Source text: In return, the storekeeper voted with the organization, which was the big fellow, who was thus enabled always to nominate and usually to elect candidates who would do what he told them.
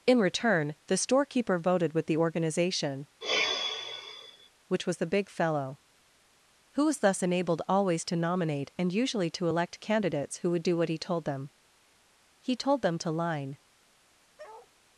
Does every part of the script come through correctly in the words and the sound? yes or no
no